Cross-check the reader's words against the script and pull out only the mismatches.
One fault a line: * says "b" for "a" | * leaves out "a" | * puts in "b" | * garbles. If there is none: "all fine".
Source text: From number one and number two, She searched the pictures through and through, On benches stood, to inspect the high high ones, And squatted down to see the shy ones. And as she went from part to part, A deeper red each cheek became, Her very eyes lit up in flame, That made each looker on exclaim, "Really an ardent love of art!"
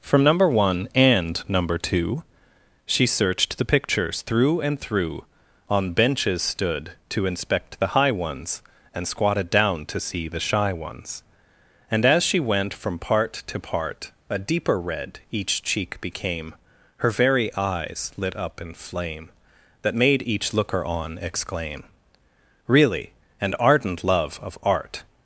* leaves out "high"